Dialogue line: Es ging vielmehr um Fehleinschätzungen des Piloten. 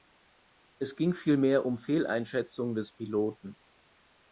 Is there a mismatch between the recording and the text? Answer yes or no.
no